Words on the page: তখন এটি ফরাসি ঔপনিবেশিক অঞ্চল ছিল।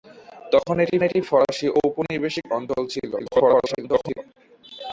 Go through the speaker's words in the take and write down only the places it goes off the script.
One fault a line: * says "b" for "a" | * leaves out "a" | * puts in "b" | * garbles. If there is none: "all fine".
* puts in "এটি"
* garbles